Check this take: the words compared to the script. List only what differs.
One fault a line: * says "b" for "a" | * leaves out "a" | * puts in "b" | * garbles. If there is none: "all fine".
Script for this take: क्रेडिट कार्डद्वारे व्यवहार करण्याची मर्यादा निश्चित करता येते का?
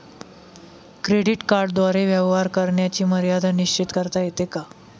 all fine